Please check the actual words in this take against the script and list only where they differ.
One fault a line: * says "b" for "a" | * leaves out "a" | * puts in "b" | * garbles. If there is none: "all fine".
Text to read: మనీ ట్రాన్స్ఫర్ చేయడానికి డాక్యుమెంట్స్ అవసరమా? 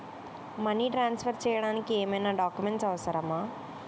* puts in "ఏమైనా"